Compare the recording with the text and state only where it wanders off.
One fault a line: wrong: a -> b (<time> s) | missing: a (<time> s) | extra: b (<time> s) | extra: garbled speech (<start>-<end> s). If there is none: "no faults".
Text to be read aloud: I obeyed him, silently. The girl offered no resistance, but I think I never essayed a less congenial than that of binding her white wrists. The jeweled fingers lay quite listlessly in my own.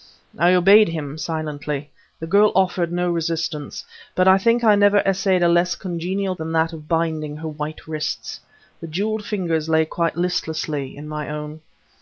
no faults